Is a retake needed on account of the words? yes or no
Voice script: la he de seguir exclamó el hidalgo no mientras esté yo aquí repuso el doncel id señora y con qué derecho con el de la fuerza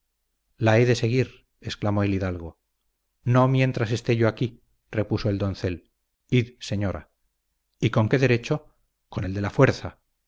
no